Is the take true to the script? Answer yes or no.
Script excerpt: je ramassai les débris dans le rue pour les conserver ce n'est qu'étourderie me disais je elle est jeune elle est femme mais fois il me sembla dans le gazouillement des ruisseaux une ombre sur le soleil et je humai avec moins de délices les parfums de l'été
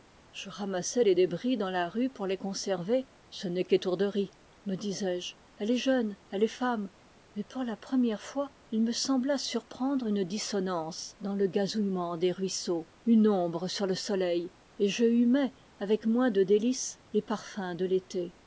no